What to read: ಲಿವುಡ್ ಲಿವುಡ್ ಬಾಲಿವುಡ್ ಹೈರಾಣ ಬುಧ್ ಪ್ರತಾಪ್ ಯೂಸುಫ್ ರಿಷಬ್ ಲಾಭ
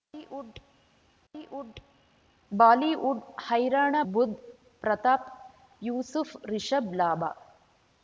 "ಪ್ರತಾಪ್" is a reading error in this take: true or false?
false